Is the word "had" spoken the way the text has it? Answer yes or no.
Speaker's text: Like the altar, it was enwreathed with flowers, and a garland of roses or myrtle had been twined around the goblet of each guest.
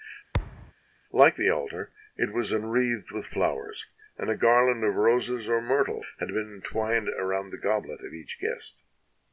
yes